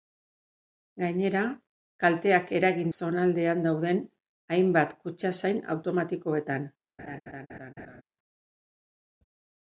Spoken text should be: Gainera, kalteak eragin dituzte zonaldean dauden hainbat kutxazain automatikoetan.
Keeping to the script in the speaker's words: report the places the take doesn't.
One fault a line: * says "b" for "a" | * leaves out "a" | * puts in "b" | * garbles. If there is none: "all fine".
* leaves out "dituzte"